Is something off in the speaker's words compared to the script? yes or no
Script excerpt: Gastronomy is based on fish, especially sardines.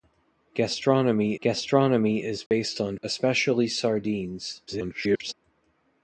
yes